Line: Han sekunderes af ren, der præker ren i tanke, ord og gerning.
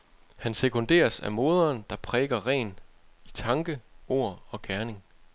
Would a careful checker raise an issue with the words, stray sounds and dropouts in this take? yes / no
yes